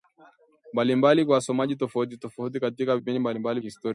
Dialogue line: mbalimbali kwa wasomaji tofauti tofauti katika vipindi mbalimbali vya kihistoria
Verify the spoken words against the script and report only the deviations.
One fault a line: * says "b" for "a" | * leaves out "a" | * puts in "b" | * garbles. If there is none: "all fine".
* leaves out "vya"